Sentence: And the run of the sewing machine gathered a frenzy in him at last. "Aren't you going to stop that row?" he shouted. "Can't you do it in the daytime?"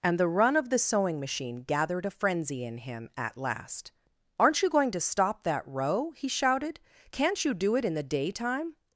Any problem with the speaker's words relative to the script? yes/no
no